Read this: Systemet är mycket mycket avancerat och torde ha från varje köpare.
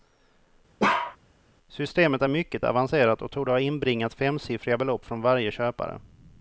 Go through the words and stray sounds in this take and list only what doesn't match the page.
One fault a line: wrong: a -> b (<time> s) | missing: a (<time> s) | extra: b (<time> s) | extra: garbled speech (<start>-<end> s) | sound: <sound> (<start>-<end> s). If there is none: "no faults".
sound: bark (0.8-1.2 s)
missing: mycket (2.7 s)
extra: inbringat femsiffriga belopp (3.6 s)